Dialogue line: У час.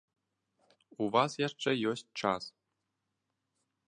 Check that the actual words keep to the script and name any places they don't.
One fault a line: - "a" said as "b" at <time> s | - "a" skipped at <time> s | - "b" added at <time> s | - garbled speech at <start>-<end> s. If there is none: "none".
- "вас яшчэ ёсць" added at 1.1 s